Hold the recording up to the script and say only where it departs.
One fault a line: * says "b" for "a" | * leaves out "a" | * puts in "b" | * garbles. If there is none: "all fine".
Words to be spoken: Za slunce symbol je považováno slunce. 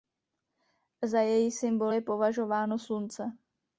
* says "její" for "slunce"